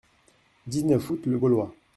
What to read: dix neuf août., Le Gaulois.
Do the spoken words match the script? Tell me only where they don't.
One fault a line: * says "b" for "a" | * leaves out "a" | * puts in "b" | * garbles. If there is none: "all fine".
all fine